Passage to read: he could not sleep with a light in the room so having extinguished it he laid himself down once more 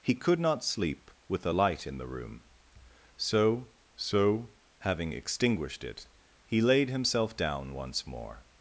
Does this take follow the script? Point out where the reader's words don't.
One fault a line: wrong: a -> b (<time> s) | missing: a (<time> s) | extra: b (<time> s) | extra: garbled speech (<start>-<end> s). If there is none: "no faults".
extra: so (4.0 s)